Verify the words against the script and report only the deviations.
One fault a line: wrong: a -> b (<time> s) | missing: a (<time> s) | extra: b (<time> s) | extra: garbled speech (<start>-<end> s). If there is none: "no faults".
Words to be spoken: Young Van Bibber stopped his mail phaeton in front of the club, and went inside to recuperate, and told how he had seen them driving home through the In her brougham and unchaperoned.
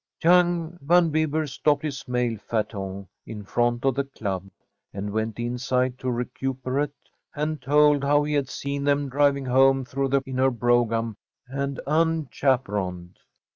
no faults